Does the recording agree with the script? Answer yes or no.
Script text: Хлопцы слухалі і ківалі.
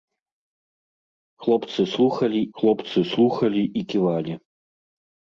no